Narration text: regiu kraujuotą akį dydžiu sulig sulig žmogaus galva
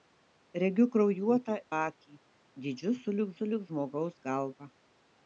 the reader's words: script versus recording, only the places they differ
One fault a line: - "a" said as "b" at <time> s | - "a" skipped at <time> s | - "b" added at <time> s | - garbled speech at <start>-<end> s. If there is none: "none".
none